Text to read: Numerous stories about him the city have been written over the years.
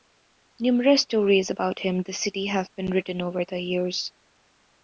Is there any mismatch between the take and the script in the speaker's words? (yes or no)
no